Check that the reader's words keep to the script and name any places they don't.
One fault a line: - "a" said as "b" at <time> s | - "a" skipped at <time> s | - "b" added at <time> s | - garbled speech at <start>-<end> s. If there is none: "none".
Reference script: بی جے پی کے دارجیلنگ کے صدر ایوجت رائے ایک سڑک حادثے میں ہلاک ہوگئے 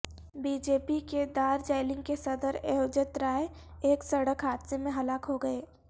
none